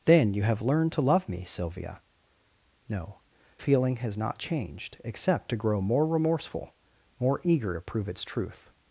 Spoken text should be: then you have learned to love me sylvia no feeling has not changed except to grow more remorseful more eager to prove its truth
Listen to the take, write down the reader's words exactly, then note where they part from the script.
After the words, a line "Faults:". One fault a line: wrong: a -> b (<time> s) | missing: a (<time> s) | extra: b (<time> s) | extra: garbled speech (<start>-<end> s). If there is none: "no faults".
then you have learned to love me sylvia no feeling has not changed except to grow more remorseful more eager to prove its truth
Faults:
no faults